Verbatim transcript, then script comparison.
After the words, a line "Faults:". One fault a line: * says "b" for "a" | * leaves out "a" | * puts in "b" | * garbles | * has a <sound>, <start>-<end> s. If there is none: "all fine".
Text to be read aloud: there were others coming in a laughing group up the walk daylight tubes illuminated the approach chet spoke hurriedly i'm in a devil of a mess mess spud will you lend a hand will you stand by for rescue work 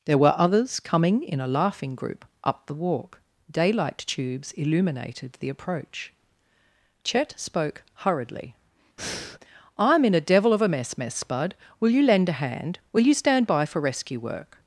there were others coming in a laughing group up the walk daylight tubes illuminated the approach chet spoke hurriedly i'm in a devil of a mess mess spud will you lend a hand will you stand by for rescue work
Faults:
* has a breath, 9.0-9.4 s